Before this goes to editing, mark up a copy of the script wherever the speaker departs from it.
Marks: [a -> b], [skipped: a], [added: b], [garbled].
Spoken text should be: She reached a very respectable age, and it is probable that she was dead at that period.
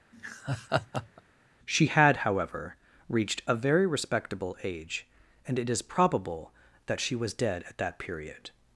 She [added: had however] reached a very respectable age, and it is probable that she was dead at that period.